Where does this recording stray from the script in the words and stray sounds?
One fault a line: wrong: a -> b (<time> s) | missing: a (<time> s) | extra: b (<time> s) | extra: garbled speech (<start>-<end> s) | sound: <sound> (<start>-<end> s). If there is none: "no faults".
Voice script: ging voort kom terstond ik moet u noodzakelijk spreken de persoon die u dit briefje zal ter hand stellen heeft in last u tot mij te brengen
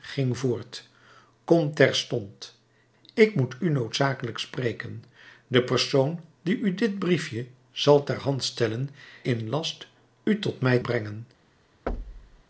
missing: heeft (8.9 s)
missing: te (10.8 s)
sound: thud (11.9-12.4 s)